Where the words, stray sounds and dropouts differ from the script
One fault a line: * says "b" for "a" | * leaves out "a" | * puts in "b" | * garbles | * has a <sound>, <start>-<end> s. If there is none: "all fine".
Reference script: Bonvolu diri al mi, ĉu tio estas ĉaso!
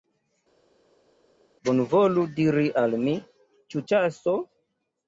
* leaves out "tio estas"